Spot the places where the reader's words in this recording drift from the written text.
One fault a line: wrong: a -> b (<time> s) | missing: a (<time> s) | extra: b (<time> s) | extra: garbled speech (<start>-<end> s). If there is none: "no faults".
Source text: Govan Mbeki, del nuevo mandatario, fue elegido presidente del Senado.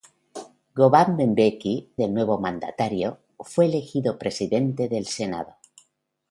no faults